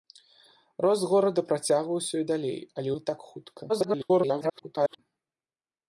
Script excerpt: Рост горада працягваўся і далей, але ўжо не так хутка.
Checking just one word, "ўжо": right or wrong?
wrong